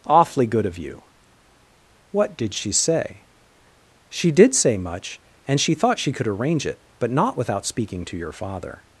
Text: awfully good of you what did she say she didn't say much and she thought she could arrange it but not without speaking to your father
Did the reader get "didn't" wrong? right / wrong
wrong